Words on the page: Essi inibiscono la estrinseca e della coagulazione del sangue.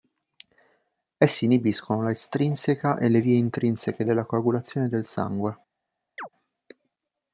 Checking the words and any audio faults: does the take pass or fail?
fail